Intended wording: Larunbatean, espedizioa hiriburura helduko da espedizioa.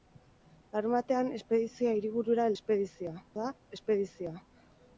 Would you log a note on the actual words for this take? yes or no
yes